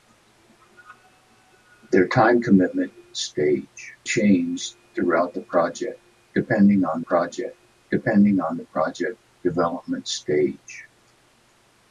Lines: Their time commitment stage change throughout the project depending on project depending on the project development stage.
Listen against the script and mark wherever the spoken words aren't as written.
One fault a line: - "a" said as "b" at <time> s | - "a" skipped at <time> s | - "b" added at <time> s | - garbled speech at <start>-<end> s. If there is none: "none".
none